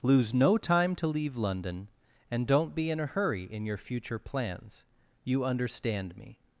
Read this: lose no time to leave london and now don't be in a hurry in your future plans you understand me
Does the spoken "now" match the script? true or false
false